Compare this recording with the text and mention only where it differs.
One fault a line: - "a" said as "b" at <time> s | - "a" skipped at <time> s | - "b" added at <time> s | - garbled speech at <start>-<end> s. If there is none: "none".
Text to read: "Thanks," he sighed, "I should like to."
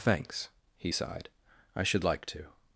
none